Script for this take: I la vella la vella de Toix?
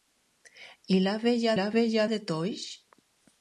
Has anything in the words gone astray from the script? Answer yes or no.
no